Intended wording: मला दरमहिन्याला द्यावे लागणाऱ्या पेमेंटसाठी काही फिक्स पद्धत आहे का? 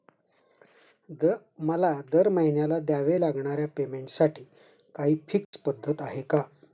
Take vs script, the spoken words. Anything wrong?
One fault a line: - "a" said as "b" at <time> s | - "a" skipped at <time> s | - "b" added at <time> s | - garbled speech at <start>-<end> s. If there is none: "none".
none